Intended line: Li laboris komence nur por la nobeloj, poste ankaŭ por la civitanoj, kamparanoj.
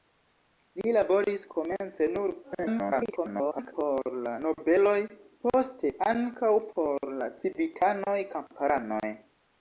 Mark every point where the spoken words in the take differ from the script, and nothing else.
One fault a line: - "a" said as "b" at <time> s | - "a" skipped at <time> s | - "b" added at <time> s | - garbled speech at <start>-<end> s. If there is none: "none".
- garbled speech at 2.4-3.7 s